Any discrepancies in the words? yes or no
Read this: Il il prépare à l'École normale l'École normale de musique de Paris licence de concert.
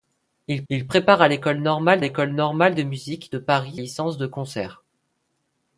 no